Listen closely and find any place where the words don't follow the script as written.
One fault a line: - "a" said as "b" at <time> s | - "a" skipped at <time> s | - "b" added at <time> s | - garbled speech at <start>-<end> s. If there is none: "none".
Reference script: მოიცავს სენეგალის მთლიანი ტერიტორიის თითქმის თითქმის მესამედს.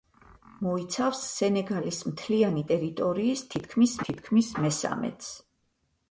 none